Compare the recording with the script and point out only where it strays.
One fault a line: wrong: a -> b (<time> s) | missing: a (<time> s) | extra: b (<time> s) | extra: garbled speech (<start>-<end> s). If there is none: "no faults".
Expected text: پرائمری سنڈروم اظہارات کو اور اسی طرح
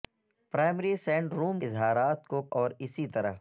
no faults